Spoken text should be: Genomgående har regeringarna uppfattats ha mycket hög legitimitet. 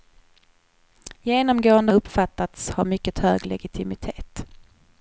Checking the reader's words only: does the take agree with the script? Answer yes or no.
no